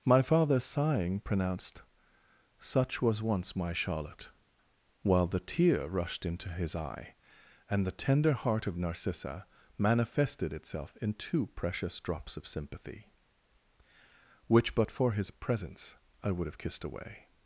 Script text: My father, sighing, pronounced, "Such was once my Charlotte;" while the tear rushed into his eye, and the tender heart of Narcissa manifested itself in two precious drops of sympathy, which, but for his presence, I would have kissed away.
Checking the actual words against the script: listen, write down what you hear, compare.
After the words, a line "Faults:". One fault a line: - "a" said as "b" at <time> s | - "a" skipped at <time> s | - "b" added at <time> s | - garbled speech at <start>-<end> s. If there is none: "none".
My father, sighing, pronounced, "Such was once my Charlotte;" while the tear rushed into his eye, and the tender heart of Narcissa manifested itself in two precious drops of sympathy, which, but for his presence, I would have kissed away.
Faults:
none